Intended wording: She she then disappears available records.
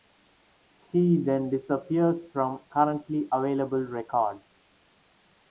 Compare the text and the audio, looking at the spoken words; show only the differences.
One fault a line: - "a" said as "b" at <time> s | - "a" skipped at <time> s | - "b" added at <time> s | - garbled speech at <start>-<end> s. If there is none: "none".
- "she" skipped at 1.2 s
- "from currently" added at 2.3 s